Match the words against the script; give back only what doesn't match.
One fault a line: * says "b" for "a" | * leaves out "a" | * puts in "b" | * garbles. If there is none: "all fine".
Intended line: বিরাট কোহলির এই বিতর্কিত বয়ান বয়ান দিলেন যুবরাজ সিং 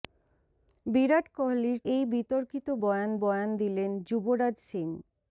all fine